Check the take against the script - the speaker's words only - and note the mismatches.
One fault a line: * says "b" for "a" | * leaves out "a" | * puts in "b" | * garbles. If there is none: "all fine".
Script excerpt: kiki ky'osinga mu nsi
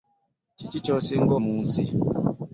all fine